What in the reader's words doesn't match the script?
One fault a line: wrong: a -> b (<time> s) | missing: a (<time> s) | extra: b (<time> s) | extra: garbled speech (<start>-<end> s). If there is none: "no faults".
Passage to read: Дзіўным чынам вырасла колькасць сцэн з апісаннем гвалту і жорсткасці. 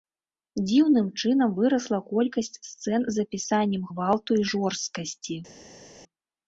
no faults